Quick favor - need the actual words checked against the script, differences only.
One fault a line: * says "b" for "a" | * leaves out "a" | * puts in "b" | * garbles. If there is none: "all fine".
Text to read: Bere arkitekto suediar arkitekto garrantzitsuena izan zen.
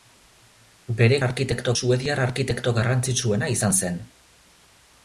all fine